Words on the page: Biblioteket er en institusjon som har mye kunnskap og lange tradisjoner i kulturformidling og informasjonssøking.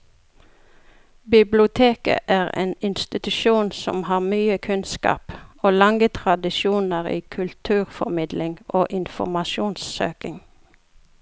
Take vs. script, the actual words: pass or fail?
pass